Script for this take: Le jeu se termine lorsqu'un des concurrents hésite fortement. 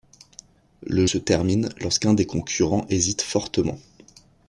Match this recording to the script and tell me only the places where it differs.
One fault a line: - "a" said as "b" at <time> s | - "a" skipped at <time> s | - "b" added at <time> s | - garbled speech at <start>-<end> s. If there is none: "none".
- "jeu" skipped at 1.1 s